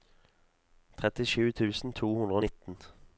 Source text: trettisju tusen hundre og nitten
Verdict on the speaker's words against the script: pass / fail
fail